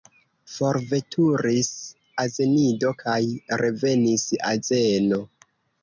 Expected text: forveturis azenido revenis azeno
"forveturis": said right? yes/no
yes